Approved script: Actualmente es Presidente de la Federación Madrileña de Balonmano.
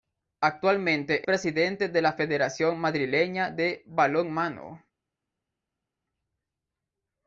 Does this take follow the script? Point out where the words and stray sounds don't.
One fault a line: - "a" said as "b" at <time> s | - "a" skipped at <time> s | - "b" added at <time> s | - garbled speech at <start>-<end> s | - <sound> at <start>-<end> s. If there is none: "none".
- "es" skipped at 1.3 s